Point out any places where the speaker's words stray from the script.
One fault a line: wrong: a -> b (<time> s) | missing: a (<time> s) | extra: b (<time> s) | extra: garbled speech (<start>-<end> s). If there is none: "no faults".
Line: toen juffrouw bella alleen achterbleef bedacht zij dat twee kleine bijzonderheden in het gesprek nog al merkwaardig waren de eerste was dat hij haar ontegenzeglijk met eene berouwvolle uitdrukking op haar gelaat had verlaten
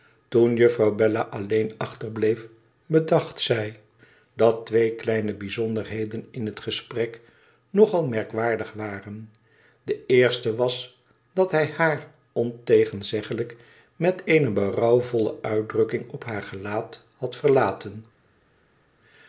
no faults